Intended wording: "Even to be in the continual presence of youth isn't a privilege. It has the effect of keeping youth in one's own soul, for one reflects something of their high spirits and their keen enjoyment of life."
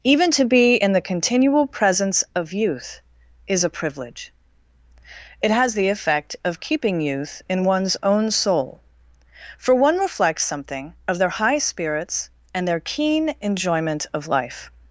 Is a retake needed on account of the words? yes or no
yes